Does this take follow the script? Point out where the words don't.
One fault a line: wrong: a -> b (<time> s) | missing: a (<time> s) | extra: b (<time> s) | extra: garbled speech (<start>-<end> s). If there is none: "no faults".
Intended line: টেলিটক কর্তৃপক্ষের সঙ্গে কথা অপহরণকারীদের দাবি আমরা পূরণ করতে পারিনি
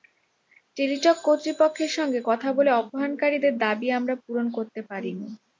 extra: বলে (2.6 s)